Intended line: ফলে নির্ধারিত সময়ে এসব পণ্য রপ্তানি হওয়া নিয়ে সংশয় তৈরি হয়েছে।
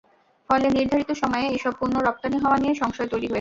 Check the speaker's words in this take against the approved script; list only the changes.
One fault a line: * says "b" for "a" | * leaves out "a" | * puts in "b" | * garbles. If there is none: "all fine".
all fine